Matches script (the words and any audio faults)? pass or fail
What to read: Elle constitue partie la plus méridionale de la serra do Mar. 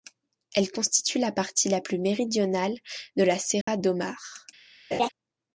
fail